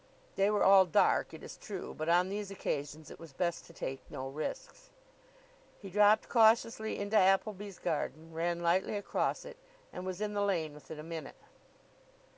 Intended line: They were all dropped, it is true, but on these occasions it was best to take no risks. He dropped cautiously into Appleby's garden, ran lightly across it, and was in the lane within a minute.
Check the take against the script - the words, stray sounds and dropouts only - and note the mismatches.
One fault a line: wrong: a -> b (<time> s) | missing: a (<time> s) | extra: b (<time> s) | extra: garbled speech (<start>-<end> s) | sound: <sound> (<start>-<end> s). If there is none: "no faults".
wrong: dropped -> dark (0.9 s)